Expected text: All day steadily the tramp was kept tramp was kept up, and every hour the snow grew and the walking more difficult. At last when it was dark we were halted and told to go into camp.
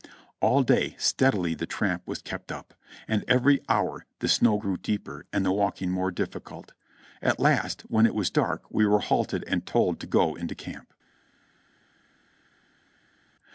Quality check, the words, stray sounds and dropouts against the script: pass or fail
fail